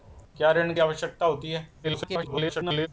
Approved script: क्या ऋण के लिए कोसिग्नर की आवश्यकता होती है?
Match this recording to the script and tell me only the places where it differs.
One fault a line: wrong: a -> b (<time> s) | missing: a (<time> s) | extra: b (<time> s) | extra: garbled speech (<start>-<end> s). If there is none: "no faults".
missing: लिए कोसिग्नर की (0.8 s)
extra: garbled speech (1.8-2.9 s)